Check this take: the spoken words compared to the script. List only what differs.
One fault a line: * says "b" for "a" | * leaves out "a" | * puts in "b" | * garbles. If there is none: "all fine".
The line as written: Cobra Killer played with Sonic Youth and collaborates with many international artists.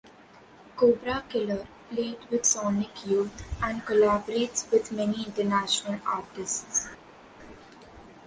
all fine